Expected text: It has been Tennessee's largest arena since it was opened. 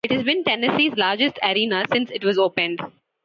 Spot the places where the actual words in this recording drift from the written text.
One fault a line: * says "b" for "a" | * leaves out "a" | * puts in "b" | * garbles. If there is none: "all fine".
all fine